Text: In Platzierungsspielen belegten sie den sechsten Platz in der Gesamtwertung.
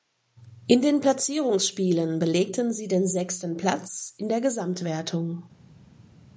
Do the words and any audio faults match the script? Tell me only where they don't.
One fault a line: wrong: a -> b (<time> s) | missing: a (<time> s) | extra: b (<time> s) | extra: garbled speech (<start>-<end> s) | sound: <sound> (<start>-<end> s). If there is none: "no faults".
extra: den (0.8 s)